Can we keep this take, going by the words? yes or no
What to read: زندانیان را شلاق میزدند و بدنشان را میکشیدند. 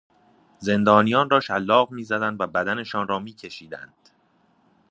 yes